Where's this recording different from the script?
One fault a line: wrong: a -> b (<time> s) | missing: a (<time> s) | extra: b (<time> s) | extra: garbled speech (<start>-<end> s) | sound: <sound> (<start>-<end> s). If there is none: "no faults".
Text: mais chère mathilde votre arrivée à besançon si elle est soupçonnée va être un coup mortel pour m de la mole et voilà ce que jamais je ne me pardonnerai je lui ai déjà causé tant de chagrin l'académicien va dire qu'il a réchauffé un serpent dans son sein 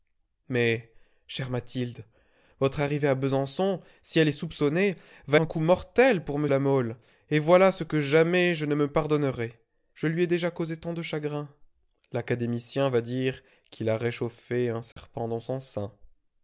missing: être (5.4 s)
missing: de (6.5 s)
sound: dropout (14.9-15.0 s)